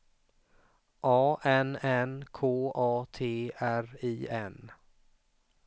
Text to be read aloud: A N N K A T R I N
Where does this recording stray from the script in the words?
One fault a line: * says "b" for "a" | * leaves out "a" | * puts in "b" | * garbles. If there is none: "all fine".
all fine